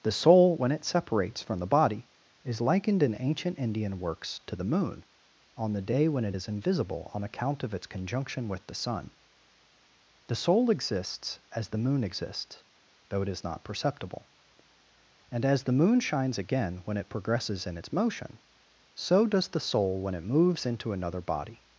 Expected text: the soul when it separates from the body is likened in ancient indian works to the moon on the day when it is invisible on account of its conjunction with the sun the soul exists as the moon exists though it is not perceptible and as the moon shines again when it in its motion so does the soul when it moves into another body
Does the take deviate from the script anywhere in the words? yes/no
yes